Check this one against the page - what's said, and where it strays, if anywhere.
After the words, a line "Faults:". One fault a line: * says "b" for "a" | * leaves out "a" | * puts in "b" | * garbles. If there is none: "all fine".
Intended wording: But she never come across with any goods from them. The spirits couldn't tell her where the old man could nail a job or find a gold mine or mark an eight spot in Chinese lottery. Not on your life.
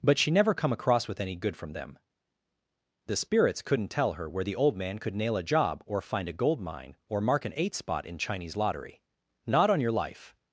But she never come across with any good from them. The spirits couldn't tell her where the old man could nail a job or find a gold mine or mark an eight spot in Chinese lottery. Not on your life.
Faults:
* says "good" for "goods"